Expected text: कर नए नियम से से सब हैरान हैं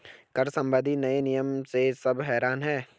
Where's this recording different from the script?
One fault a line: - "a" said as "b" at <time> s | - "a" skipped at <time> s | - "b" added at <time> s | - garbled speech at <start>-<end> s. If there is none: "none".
- "संबंधी" added at 0.5 s
- "से" skipped at 1.9 s